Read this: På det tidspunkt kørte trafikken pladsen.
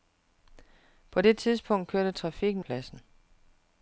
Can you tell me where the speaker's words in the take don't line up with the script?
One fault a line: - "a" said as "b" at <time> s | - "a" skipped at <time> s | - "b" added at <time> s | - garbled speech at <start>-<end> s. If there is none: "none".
none